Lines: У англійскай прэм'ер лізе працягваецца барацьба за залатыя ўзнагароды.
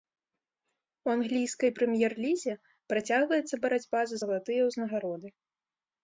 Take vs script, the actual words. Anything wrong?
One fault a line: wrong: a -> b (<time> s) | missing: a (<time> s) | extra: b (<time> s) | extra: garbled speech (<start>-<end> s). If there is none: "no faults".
no faults